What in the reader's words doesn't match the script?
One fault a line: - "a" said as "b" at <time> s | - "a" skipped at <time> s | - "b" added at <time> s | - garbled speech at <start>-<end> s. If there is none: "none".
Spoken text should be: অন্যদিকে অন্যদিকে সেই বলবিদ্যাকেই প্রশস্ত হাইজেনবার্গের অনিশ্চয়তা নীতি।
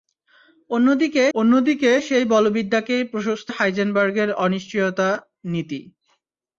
none